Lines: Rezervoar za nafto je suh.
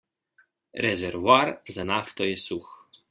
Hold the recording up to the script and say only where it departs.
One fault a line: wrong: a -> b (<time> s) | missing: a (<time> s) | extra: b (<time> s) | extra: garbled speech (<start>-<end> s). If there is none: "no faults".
no faults